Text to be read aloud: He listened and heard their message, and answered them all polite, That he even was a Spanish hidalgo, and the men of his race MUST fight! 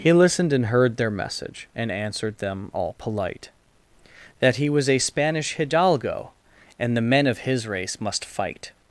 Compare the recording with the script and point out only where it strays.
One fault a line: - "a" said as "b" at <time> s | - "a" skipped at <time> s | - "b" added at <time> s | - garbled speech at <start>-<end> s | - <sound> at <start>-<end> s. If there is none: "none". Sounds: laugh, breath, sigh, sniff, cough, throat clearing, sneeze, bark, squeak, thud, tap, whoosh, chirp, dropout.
- "even" skipped at 4.7 s